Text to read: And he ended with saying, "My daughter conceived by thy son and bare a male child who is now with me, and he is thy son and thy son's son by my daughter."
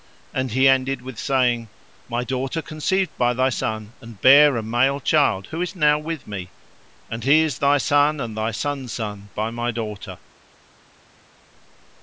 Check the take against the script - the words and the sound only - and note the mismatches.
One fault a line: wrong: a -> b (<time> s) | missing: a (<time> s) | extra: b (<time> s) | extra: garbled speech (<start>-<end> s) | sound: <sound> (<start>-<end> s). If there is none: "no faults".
no faults